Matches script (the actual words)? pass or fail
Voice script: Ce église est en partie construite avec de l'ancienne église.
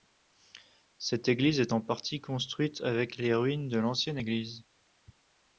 fail